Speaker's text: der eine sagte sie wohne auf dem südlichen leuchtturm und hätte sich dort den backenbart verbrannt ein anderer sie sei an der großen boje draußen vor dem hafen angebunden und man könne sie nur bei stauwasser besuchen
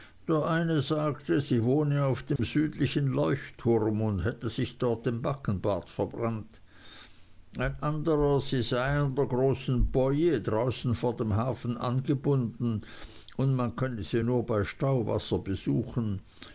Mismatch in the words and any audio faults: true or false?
true